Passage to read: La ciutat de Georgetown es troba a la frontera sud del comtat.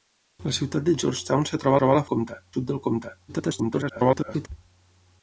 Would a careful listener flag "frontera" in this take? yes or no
yes